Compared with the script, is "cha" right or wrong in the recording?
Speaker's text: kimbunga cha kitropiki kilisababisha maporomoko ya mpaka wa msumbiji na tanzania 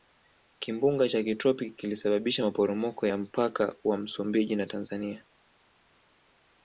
right